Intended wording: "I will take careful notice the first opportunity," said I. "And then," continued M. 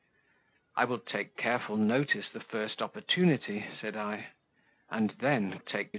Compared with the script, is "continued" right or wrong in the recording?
wrong